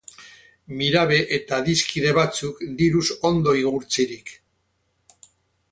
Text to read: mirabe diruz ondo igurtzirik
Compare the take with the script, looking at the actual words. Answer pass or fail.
fail